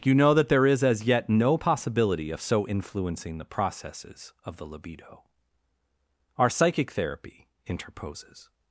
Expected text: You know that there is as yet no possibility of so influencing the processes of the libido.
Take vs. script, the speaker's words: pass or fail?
fail